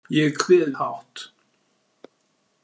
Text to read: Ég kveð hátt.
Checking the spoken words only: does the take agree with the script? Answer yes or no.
yes